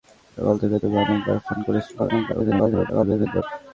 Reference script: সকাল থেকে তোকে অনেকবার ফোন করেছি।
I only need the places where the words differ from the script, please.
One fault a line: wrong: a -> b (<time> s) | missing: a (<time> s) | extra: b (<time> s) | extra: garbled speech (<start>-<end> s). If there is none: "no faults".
extra: garbled speech (2.0-3.4 s)